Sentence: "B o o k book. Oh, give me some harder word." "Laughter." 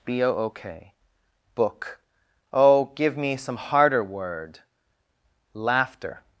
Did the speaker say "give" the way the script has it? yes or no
yes